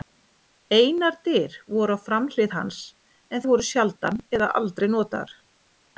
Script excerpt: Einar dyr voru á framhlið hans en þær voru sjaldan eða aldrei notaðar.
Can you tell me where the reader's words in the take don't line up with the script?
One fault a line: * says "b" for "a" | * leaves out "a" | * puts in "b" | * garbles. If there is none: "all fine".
* leaves out "þær"